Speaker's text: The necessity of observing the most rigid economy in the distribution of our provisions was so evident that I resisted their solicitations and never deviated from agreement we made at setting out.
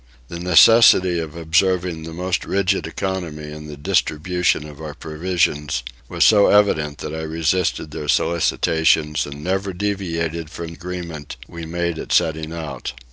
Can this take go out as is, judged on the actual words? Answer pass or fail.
pass